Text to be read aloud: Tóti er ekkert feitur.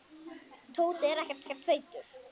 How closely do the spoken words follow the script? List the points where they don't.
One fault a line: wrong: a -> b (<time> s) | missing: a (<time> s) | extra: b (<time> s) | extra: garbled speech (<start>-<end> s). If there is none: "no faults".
extra: ekkert (1.5 s)